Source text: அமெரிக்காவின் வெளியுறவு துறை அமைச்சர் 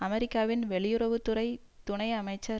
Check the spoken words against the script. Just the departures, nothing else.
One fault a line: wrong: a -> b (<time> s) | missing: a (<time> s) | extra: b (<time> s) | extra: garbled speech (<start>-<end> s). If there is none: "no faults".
extra: துணை (1.8 s)